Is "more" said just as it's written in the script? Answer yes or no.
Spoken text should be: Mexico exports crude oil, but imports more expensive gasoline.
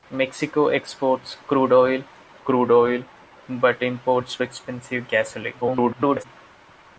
no